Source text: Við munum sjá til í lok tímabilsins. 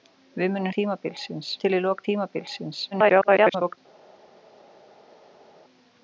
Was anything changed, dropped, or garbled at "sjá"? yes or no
yes